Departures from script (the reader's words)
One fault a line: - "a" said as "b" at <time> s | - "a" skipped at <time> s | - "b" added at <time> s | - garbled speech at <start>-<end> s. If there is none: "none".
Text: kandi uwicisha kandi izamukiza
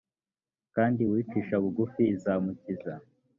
- "kandi" said as "bugufi" at 1.6 s